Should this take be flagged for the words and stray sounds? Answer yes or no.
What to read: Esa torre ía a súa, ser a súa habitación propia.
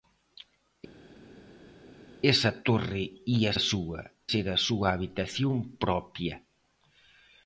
no